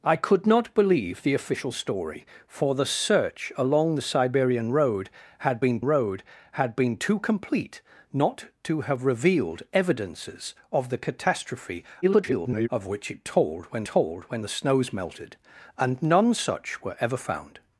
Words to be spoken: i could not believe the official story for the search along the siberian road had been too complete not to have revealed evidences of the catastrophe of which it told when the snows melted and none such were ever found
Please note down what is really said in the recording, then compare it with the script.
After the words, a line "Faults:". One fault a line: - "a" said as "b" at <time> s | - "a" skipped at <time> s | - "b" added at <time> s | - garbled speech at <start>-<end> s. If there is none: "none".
i could not believe the official story for the search along the siberian road had been road had been too complete not to have revealed evidences of the catastrophe [garbled] of which it told when told when the snows melted and none such were ever found
Faults:
- "road had been" added at 5.8 s
- garbled speech at 12.0-12.7 s
- "told when" added at 13.8 s